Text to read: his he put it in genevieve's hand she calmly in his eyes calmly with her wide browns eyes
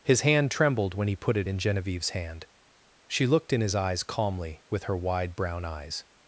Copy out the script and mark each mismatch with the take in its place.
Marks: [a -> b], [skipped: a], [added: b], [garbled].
his [added: hand trembled when] he put it in genevieve's hand she [calmly -> looked] in his eyes calmly with her wide [browns -> brown] eyes